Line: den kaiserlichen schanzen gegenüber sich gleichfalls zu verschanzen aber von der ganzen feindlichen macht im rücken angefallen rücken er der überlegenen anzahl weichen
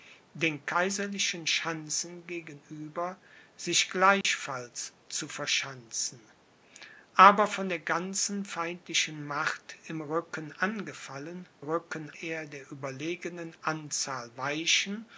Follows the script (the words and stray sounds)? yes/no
no